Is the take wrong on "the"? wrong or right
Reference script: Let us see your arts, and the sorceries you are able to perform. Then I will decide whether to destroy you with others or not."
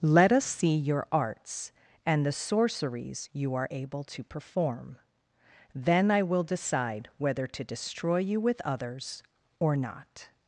right